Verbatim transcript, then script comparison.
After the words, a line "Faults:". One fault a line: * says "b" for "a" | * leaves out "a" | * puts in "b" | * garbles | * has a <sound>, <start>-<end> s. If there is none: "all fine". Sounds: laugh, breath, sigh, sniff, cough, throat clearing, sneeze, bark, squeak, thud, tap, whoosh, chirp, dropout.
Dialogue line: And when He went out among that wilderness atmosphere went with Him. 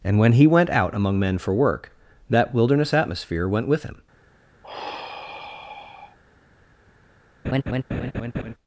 And when He went out among men for work, that wilderness atmosphere went with Him.
Faults:
* puts in "men for work"
* has a sigh, 4.6-6.2 s
* has a laugh, 7.4-8.5 s